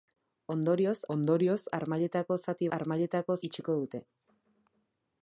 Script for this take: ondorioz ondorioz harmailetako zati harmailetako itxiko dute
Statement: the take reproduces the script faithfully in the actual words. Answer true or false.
true